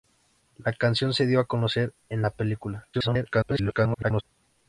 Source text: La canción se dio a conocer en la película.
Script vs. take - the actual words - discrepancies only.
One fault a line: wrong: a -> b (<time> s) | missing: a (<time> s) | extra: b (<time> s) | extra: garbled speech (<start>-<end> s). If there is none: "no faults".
extra: garbled speech (2.9-4.2 s)